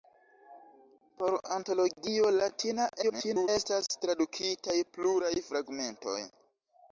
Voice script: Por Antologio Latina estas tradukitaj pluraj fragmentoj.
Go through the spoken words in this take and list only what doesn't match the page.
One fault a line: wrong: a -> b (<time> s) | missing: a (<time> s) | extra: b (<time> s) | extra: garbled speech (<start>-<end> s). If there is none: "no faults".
extra: garbled speech (3.0-3.5 s)